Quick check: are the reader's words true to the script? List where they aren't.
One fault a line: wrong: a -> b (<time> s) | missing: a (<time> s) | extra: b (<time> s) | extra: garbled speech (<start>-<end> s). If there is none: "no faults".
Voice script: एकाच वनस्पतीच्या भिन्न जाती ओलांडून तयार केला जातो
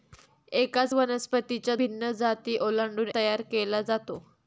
no faults